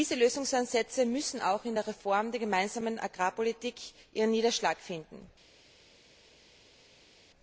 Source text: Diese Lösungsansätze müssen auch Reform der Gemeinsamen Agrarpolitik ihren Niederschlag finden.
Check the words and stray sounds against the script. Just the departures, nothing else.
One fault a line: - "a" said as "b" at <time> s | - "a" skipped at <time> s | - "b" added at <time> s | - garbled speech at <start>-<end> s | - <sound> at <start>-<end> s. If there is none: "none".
- "in der" added at 1.6 s